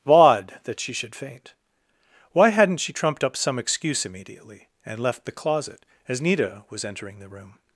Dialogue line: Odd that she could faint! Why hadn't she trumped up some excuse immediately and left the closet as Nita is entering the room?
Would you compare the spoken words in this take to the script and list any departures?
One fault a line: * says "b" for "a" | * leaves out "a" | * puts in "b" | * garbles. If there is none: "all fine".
* says "should" for "could"
* says "was" for "is"